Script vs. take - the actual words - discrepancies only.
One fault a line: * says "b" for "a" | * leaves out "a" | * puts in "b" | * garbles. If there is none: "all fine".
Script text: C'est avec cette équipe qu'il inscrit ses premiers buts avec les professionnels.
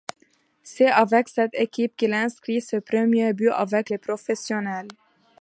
all fine